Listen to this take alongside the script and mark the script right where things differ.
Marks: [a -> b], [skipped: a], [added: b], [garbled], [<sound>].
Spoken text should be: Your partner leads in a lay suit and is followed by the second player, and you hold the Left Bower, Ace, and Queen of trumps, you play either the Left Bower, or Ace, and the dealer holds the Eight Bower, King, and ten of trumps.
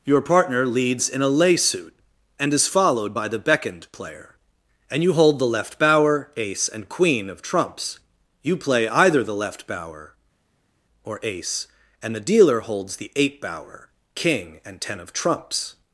Your partner leads in a lay suit and is followed by the [second -> beckoned] player, and you hold the Left Bower, Ace, and Queen of trumps, you play either the Left Bower, or Ace, and the dealer holds the Eight Bower, King, and ten of trumps.